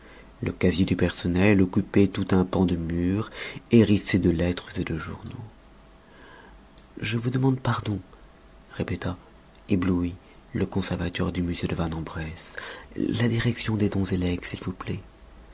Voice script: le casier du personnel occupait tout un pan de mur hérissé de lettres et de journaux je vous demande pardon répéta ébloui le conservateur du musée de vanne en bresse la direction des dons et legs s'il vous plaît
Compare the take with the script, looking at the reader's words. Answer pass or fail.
pass